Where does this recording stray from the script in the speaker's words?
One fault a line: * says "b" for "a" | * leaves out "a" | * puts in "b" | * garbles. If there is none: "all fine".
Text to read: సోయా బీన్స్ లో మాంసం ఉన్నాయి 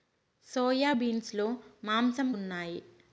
all fine